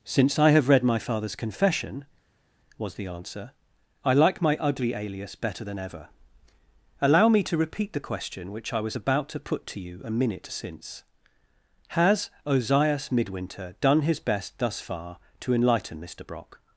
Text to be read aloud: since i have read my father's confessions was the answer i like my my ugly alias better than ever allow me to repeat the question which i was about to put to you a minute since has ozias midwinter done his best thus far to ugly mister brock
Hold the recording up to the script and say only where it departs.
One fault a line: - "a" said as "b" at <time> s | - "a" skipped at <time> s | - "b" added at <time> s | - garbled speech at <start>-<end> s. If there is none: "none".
- "confessions" said as "confession" at 1.4 s
- "my" skipped at 4.6 s
- "ugly" said as "enlighten" at 15.5 s